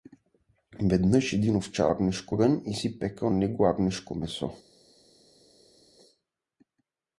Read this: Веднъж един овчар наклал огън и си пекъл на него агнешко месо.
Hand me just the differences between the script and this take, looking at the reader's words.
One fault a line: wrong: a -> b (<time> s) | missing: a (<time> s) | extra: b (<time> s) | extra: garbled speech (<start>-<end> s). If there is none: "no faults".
wrong: наклал -> агнешко (1.9 s)
missing: на (3.3 s)